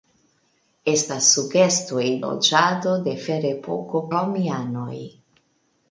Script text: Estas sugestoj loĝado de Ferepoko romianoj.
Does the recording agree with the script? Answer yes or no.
yes